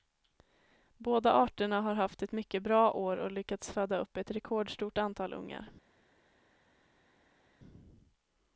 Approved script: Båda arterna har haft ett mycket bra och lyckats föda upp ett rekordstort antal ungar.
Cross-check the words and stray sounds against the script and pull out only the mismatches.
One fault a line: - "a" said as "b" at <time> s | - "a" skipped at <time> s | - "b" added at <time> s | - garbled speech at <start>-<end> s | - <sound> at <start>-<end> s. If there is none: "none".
- "år" added at 2.9 s